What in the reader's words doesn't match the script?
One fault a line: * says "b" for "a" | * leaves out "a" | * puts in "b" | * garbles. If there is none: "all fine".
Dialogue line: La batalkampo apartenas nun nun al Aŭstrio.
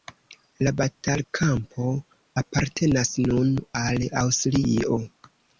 * leaves out "nun"